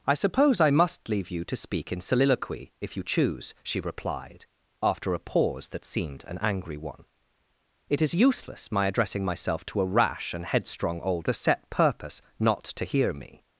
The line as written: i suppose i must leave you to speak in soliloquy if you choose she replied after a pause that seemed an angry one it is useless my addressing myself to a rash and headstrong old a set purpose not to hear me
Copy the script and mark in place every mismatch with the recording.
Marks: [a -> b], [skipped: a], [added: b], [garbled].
i suppose i must leave you to speak in soliloquy if you choose she replied after a pause that seemed an angry one it is useless my addressing myself to a rash and headstrong old a set purpose not to hear me